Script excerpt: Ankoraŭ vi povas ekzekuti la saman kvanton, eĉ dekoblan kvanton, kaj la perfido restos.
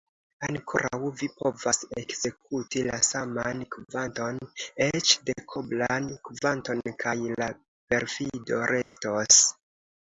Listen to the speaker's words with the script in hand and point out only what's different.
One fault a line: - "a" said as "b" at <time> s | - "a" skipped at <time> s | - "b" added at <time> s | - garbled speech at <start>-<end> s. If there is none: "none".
none